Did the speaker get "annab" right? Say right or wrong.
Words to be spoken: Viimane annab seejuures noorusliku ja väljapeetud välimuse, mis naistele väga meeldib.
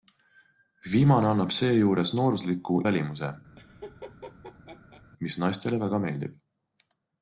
right